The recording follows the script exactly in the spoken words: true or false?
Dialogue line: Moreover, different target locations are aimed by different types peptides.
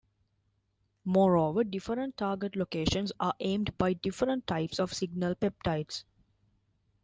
false